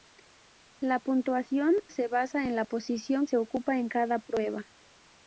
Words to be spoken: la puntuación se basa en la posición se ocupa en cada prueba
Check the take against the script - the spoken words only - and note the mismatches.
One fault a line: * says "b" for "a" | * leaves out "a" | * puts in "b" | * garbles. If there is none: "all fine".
all fine